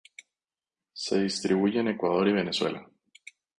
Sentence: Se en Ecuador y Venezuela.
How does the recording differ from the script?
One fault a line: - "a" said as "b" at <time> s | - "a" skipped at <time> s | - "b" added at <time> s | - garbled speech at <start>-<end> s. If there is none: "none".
- "distribuye" added at 1.2 s